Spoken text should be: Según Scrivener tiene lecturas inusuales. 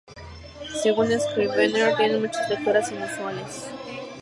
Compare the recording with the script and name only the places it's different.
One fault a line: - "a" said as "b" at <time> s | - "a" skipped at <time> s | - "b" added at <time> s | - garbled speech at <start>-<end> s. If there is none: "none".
- "muchas" added at 2.2 s